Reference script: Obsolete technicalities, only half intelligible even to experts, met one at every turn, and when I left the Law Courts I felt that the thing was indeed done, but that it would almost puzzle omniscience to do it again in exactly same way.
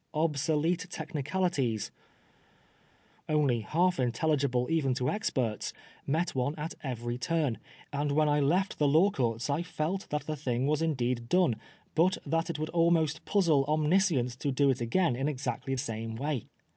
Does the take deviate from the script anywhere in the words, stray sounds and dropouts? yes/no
no